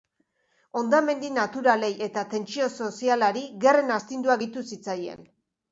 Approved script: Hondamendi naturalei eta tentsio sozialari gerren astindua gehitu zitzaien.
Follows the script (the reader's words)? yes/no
yes